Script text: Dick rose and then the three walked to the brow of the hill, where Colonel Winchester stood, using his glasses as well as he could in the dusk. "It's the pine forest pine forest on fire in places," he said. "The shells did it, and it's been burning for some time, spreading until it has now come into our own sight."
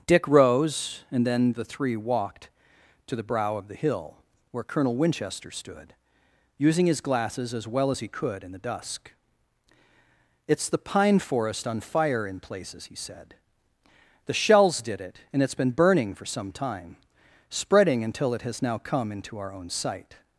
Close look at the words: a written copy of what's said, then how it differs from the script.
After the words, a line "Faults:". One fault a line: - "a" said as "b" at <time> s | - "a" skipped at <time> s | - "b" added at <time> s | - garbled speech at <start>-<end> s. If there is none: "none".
Dick rose and then the three walked to the brow of the hill, where Colonel Winchester stood, using his glasses as well as he could in the dusk. "It's the pine forest on fire in places," he said. "The shells did it, and it's been burning for some time, spreading until it has now come into our own sight."
Faults:
- "pine forest" skipped at 11.7 s